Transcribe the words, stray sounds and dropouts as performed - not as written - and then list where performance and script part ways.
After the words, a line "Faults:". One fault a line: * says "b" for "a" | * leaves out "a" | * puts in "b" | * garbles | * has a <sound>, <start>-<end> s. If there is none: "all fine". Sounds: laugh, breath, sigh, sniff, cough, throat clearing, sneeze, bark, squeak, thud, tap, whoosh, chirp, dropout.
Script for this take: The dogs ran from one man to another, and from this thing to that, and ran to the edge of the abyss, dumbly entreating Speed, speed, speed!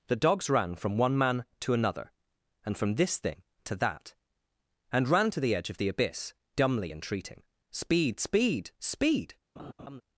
The dogs ran from one man to another, and from this thing to that, and ran to the edge of the abyss, dumbly entreating Speed, speed, speed!
Faults:
* has a laugh, 9.6-10.0 s